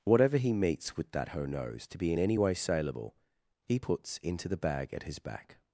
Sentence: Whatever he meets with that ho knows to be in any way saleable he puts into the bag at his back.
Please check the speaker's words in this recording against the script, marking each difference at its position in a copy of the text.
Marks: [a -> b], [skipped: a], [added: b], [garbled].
Whatever he meets with that ho knows to be in any way saleable he puts into the bag at his back.